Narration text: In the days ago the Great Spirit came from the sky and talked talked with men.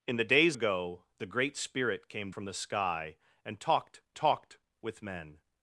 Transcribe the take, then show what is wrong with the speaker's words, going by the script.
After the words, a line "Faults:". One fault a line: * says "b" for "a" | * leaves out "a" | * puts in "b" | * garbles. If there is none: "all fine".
In the days ago the Great Spirit came from the sky and talked talked with men.
Faults:
all fine